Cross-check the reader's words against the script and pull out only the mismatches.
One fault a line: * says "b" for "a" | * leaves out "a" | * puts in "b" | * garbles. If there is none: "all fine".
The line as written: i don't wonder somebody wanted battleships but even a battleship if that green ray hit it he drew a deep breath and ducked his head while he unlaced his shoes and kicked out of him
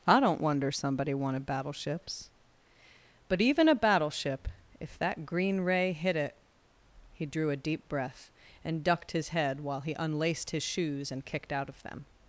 * says "them" for "him"